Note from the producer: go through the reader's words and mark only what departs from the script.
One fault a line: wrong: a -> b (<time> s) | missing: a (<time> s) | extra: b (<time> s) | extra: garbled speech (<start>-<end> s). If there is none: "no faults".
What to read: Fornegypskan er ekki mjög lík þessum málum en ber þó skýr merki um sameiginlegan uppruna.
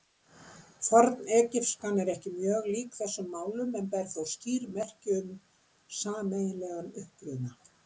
no faults